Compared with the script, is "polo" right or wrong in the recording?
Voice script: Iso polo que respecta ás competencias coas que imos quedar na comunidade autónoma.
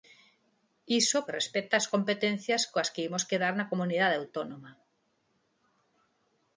wrong